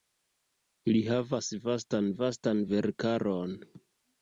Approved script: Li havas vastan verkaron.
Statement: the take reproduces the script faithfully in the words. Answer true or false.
false